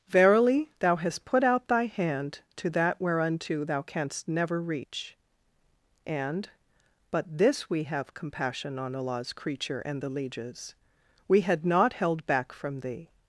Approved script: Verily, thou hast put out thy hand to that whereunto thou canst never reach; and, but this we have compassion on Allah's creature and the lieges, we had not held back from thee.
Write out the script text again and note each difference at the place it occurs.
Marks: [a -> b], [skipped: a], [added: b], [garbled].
Verily, thou hast put out thy hand to that whereunto thou canst never reach; and, but this we have compassion on Allah's creature and the lieges, we had not held back from thee.